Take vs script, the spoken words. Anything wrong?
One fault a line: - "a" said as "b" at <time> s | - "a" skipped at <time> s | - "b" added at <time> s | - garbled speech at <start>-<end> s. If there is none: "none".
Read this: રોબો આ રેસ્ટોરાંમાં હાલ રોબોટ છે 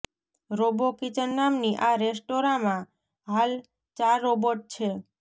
- "કિચન નામની" added at 1.0 s
- "ચાર" added at 4.0 s